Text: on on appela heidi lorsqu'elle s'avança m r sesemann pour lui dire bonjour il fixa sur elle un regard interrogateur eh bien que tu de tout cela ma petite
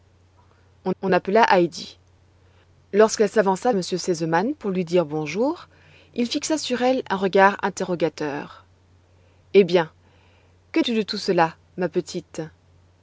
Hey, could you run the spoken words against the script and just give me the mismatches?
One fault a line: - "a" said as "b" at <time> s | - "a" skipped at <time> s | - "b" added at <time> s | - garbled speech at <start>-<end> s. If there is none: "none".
none